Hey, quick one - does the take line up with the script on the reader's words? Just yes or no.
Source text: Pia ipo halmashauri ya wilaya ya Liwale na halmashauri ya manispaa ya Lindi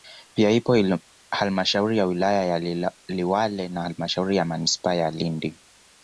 yes